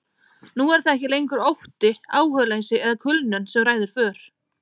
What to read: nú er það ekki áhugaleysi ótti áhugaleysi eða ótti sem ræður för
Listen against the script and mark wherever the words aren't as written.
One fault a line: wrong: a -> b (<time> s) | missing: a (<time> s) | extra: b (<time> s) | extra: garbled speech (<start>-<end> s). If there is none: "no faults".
wrong: áhugaleysi -> lengur (1.1 s)
wrong: ótti -> kulnun (3.0 s)